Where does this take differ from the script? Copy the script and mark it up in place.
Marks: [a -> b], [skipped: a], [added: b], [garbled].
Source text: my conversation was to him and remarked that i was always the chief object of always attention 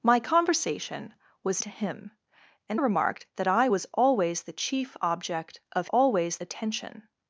my conversation was to him and remarked that i was always the chief object of always attention